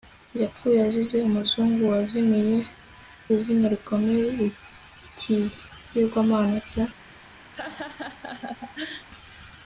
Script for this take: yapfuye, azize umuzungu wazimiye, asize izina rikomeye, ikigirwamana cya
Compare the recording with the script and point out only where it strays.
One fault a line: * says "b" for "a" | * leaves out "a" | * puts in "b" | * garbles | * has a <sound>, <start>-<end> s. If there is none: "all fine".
* leaves out "asize"
* has a laugh, 7.5-9.1 s